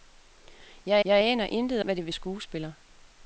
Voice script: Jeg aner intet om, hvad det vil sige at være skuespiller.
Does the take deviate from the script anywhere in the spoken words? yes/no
yes